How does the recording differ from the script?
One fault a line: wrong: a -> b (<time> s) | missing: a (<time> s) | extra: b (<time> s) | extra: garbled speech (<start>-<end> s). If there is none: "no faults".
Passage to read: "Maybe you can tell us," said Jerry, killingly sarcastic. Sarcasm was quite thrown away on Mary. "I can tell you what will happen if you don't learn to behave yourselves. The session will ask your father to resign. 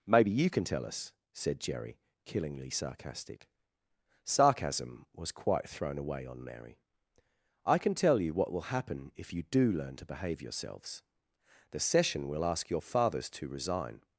wrong: don't -> do (9.4 s)
wrong: father -> fathers (12.8 s)